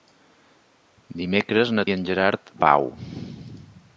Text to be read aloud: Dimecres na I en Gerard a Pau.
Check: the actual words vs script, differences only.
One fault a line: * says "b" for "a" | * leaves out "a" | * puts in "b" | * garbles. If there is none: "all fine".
all fine